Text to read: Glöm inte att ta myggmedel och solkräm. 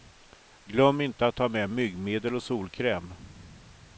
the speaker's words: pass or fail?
fail